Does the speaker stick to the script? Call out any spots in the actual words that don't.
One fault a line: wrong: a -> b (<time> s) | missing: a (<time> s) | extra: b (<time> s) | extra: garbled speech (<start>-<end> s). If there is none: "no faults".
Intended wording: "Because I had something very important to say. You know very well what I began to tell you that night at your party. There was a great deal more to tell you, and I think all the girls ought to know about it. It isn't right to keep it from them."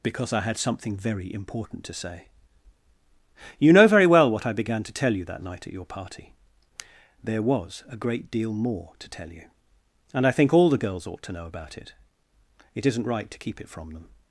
no faults